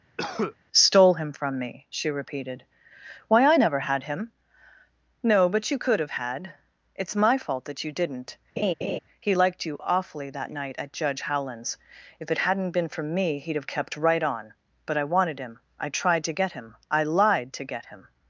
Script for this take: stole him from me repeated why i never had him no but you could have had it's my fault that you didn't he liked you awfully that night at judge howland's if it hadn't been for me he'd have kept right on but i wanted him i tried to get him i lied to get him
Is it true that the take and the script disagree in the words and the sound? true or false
true